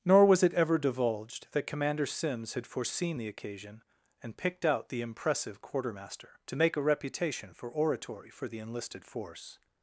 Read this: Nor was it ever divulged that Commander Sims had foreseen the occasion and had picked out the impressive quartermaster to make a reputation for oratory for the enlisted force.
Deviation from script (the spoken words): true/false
true